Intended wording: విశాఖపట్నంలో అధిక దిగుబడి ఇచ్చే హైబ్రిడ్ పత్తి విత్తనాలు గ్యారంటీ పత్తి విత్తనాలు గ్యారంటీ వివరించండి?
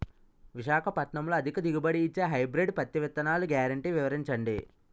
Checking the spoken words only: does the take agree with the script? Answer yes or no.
no